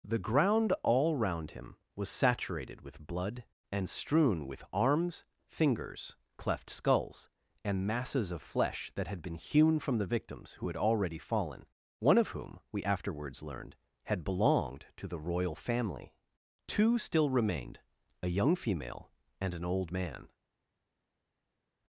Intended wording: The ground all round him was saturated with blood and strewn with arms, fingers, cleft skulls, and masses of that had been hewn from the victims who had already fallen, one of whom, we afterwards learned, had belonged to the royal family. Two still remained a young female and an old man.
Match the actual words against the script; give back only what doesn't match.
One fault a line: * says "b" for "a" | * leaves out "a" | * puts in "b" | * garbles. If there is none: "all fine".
* puts in "flesh"